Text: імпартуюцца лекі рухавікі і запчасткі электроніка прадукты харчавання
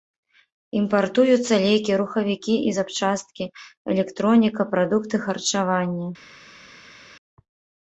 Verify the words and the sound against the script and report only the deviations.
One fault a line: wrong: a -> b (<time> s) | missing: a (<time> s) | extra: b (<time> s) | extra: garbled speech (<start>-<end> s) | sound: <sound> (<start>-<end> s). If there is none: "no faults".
no faults